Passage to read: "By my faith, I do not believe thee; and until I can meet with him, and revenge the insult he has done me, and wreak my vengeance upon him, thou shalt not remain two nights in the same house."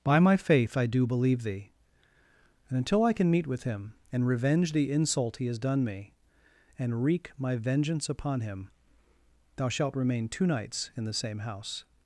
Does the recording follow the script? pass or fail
fail